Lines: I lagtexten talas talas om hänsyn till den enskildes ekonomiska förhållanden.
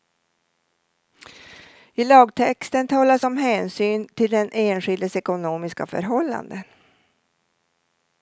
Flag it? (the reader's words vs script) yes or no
yes